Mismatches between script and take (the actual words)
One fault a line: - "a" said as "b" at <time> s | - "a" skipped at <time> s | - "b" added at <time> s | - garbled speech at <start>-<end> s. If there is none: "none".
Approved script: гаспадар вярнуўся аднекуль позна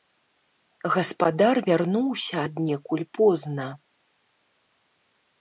none